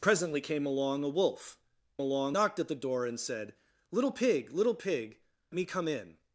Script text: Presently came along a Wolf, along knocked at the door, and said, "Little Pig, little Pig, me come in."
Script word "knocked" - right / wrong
right